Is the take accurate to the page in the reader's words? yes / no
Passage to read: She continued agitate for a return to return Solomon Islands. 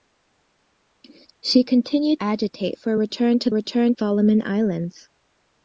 yes